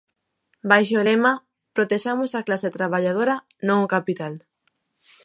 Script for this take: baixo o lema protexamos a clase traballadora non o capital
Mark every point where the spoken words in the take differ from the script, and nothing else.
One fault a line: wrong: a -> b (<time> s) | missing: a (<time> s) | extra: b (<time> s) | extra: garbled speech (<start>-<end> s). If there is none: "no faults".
no faults